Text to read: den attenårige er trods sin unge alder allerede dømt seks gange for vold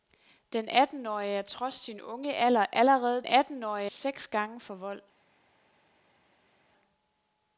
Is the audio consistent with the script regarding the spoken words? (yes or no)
no